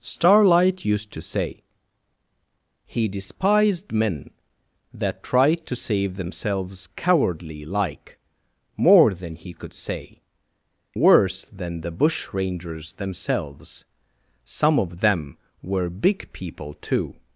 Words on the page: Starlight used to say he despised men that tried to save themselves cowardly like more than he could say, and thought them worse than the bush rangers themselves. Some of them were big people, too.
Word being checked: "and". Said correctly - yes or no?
no